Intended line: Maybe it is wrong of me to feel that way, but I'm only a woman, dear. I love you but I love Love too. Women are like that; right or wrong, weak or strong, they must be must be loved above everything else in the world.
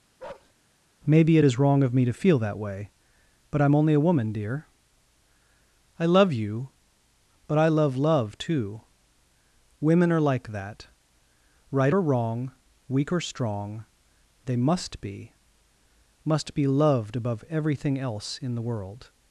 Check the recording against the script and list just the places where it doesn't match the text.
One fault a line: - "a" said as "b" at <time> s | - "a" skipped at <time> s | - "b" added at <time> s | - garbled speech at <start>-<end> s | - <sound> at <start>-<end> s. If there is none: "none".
- bark at 0.2-0.5 s